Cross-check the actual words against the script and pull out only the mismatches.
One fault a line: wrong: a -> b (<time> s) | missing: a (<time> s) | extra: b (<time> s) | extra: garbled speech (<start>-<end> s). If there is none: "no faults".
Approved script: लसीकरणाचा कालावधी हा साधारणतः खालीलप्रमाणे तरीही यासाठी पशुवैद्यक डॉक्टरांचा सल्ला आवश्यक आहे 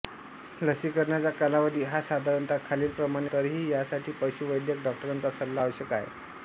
no faults